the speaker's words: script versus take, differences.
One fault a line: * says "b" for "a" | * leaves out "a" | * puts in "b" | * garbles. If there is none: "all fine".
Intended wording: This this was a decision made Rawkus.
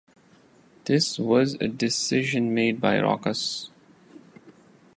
* leaves out "this"
* puts in "by"